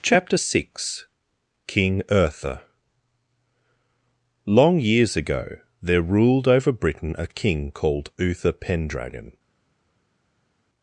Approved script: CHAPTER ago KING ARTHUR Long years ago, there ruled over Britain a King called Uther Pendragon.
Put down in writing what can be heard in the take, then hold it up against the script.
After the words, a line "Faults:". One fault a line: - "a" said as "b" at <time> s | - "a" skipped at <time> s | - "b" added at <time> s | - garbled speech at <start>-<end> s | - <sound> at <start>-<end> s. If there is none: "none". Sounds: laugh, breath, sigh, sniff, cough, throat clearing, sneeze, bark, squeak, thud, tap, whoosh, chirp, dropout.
CHAPTER six KING ARTHUR Long years ago, there ruled over Britain a King called Uther Pendragon.
Faults:
- "ago" said as "six" at 0.4 s